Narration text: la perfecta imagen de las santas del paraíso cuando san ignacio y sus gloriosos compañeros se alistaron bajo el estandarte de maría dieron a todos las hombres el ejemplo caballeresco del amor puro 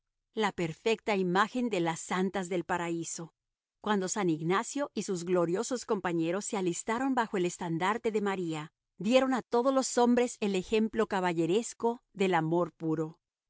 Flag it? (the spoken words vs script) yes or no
yes